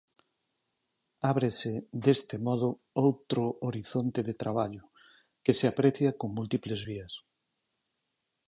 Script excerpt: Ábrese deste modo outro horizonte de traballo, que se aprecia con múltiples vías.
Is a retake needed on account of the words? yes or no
no